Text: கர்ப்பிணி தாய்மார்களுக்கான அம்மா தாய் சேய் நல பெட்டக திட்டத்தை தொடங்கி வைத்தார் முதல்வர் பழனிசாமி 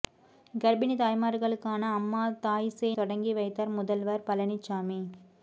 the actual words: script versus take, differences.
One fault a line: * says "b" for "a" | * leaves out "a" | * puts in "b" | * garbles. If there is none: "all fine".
* leaves out "நல பெட்டக திட்டத்தை"